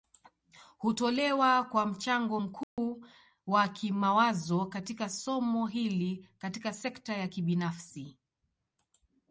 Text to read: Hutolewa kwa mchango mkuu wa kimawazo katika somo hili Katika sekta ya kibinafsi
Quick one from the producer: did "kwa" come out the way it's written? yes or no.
yes